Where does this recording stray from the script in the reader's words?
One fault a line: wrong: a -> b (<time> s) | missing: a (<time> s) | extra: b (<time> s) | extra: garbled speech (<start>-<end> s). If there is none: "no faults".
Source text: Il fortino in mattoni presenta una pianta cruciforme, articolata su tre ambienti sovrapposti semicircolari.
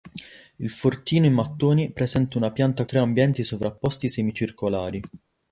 missing: cruciforme articolata su (2.9 s)